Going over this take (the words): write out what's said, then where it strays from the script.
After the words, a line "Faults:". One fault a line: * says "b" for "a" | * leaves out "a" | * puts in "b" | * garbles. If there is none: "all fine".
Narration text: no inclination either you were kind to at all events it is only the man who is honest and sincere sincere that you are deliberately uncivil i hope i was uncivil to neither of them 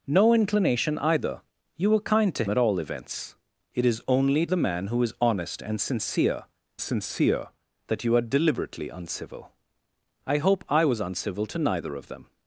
no inclination either you were kind to at all events it is only the man who is honest and sincere sincere that you are deliberately uncivil i hope i was uncivil to neither of them
Faults:
all fine